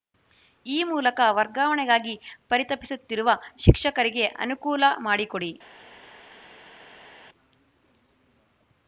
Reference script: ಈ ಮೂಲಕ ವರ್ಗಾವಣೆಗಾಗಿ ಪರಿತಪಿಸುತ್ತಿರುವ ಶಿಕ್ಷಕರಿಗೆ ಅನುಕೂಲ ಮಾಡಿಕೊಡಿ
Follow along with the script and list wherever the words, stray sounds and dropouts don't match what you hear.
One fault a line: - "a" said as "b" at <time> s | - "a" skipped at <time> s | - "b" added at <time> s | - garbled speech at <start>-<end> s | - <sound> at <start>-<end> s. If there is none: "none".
none